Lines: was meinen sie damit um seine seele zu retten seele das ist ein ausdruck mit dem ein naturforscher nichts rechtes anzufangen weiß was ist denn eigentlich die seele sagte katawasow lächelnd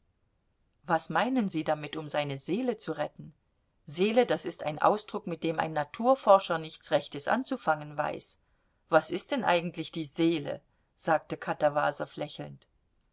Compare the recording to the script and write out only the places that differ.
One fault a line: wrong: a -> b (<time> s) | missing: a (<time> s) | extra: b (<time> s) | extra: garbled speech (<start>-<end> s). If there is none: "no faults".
no faults